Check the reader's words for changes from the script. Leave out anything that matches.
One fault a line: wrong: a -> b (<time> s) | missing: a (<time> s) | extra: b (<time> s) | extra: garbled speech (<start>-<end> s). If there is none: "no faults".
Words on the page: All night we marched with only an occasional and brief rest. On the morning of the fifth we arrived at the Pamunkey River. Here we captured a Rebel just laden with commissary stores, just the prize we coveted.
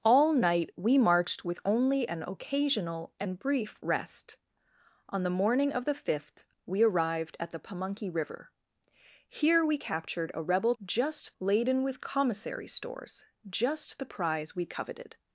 no faults